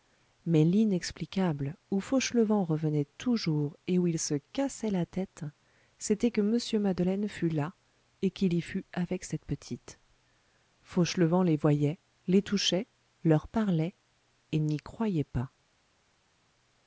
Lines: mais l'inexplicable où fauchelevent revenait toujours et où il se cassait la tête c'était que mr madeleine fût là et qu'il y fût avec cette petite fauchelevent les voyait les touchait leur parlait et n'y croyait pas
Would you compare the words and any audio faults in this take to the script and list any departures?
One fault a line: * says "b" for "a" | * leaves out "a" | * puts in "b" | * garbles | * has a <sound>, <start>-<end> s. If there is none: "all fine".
all fine